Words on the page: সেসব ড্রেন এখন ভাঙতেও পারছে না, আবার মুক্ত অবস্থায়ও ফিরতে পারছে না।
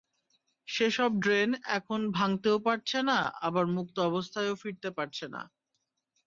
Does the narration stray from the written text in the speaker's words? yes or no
no